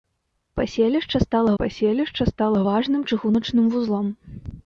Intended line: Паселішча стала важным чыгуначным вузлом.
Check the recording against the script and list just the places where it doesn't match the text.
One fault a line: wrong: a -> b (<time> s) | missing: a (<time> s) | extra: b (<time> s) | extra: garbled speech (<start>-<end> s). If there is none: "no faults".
extra: паселішча стала (1.6 s)